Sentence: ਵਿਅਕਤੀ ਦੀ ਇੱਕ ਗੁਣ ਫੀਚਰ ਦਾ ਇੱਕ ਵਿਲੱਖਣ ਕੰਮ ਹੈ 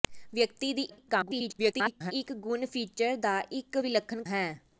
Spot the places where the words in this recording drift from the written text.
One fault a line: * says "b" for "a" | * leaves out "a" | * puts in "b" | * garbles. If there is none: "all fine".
* garbles
* leaves out "ਕੰਮ"